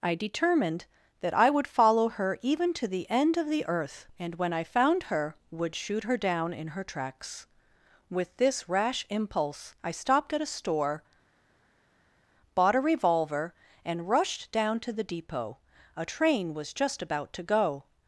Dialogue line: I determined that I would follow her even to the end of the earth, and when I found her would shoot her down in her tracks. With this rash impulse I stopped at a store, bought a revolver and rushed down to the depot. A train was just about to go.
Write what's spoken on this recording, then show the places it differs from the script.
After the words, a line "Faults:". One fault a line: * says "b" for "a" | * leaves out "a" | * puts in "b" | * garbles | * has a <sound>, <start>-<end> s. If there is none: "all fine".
I determined that I would follow her even to the end of the earth, and when I found her would shoot her down in her tracks. With this rash impulse I stopped at a store, bought a revolver and rushed down to the depot. A train was just about to go.
Faults:
all fine